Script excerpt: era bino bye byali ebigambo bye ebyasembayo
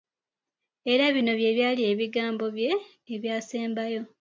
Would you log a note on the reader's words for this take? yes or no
no